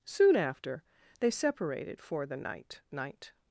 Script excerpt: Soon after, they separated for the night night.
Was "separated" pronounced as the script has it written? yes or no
yes